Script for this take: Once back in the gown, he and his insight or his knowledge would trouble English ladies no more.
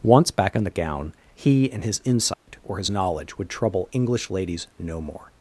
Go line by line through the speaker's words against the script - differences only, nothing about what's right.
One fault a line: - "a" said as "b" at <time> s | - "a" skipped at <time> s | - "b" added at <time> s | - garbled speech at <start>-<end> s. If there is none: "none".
none